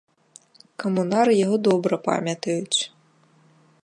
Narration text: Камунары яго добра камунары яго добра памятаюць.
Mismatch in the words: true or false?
true